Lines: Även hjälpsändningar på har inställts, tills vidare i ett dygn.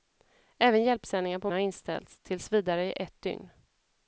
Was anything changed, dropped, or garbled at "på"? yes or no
no